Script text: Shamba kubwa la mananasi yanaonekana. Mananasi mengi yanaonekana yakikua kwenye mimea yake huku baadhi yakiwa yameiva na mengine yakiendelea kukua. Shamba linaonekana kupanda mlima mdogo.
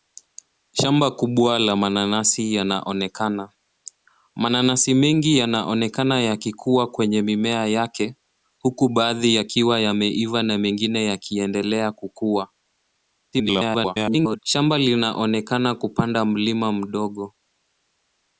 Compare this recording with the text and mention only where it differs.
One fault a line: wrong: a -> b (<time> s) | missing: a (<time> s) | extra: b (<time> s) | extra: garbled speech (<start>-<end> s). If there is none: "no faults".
extra: garbled speech (13.3-14.4 s)